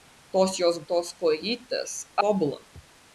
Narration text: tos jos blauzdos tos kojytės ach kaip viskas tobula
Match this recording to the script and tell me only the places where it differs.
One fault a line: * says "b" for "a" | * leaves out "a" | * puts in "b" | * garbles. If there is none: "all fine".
* leaves out "blauzdos"
* leaves out "ach kaip viskas"